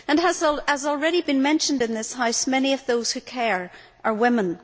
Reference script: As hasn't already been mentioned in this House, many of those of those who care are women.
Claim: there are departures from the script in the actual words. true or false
true